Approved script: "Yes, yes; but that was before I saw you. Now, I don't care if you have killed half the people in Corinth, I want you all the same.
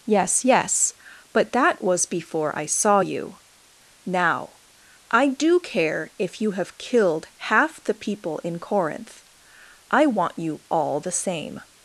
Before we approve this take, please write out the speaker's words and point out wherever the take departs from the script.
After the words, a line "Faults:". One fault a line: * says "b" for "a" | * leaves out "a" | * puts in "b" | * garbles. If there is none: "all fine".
"Yes, yes; but that was before I saw you. Now, I do care if you have killed half the people in Corinth, I want you all the same.
Faults:
* says "do" for "don't"